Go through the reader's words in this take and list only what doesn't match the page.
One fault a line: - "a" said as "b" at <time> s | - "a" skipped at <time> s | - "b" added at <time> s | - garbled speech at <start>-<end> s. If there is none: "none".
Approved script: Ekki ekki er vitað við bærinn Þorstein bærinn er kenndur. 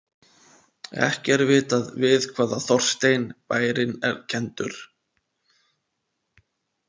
- "ekki" skipped at 1.3 s
- "bærinn" said as "hvaða" at 2.3 s